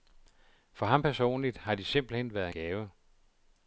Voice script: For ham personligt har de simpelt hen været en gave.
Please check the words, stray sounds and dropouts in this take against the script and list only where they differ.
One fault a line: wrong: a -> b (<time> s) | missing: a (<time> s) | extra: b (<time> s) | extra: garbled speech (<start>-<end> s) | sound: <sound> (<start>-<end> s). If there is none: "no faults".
missing: en (2.5 s)